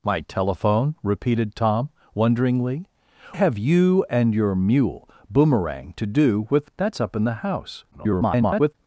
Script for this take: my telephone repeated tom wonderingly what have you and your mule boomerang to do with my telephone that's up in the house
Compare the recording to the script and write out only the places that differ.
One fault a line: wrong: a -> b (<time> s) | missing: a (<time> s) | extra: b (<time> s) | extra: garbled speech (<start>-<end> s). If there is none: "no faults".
missing: what (2.9 s)
missing: my telephone (6.7 s)
extra: garbled speech (7.9-8.7 s)